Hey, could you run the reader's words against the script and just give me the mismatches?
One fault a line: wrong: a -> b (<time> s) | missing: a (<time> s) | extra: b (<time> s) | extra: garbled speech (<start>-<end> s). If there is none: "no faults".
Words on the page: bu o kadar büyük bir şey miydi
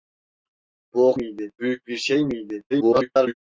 wrong: kadar -> miydi (1.1 s)
extra: garbled speech (2.7-3.3 s)